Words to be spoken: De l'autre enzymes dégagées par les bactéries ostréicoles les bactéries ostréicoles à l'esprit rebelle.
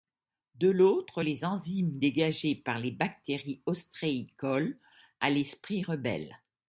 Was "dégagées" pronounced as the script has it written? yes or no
yes